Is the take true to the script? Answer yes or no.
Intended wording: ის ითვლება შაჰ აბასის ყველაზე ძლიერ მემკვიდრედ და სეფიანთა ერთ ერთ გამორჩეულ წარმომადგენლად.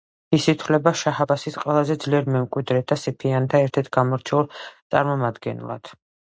yes